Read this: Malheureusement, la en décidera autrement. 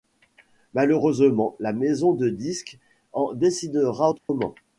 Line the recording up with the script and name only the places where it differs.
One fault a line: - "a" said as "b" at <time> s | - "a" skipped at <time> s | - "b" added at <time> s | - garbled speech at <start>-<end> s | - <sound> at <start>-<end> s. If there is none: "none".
- "maison de disques" added at 1.7 s
- dropout at 4.2-4.3 s